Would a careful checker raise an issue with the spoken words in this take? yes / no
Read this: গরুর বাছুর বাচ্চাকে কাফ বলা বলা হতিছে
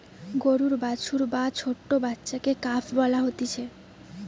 yes